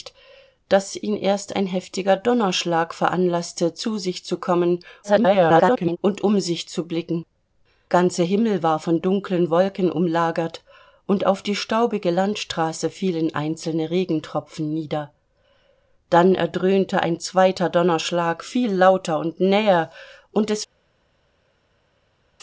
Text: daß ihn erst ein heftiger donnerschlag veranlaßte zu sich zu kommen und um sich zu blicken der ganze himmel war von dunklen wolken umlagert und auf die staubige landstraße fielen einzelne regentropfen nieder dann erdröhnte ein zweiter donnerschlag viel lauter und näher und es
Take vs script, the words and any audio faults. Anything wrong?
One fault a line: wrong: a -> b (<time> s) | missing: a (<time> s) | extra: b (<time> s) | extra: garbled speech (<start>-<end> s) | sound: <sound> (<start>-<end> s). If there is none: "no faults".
extra: garbled speech (5.0-6.0 s)
missing: der (7.2 s)